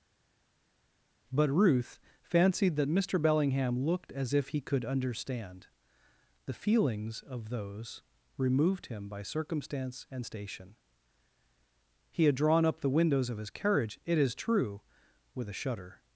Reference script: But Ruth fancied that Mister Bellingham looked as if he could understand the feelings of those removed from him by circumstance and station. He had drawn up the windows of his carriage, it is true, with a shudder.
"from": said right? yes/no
no